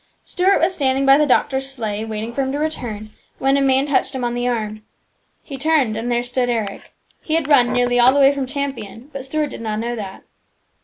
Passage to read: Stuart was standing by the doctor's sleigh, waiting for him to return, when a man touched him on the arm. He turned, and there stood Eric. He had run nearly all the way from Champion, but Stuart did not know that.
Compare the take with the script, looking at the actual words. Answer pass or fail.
pass